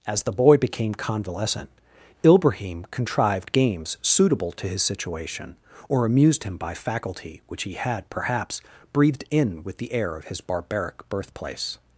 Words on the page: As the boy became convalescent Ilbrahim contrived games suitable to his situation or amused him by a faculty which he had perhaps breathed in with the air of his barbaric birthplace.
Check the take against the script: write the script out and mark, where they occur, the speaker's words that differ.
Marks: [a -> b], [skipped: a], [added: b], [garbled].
As the boy became convalescent Ilbrahim contrived games suitable to his situation or amused him by [skipped: a] faculty which he had perhaps breathed in with the air of his barbaric birthplace.